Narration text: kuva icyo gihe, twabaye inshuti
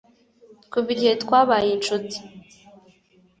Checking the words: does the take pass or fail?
fail